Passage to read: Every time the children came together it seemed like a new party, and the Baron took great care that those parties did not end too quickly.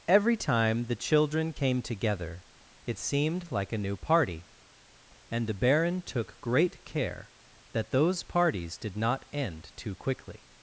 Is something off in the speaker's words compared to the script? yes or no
no